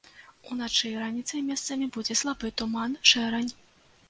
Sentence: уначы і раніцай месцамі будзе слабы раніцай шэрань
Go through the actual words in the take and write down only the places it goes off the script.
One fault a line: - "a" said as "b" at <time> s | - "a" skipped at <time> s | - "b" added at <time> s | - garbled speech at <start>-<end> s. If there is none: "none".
- "раніцай" said as "туман" at 2.6 s